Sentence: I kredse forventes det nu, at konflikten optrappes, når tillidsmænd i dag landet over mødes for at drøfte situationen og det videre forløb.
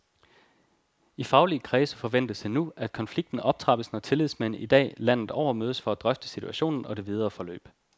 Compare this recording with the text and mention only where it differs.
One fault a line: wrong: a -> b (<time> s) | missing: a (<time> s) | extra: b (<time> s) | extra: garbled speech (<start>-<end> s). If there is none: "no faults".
extra: faglige (1.2 s)